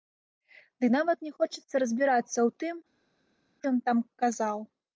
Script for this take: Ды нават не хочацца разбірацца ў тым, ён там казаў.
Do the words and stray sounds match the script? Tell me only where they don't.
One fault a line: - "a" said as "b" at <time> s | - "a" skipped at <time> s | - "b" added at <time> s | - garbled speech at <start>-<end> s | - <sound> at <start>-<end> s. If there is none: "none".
none